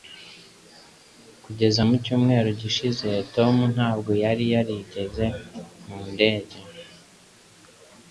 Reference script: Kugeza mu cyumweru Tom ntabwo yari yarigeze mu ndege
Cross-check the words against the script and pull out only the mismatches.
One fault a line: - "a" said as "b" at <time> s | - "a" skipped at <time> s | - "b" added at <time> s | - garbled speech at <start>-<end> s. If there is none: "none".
- "gishize" added at 2.6 s